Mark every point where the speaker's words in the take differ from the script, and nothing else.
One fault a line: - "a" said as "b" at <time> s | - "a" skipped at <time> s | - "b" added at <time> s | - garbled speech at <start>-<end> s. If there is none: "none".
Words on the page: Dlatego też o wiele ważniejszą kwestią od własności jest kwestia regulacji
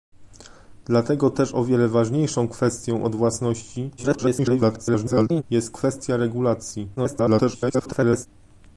- garbled speech at 4.0-5.4 s
- garbled speech at 7.0-8.3 s